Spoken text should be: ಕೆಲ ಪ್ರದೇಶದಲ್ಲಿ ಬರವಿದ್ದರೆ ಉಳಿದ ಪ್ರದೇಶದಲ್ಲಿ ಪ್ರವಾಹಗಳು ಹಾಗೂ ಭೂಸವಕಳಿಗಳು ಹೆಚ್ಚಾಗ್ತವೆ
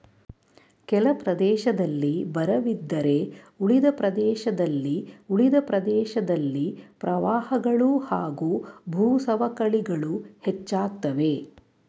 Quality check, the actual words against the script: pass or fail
fail